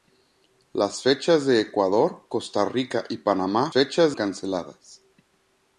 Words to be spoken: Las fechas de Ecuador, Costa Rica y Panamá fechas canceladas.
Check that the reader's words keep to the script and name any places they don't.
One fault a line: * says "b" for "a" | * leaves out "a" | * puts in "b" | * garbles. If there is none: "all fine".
all fine